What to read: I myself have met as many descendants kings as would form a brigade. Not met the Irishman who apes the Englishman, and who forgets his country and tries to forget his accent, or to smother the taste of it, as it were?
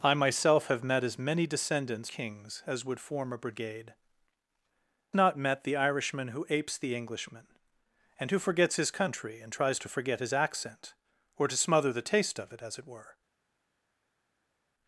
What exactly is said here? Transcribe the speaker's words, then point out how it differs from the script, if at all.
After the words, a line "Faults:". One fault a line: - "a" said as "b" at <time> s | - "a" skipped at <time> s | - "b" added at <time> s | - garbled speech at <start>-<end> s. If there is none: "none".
I myself have met as many descendants kings as would form a brigade. Not met the Irishman who apes the Englishman, and who forgets his country and tries to forget his accent, or to smother the taste of it, as it were?
Faults:
none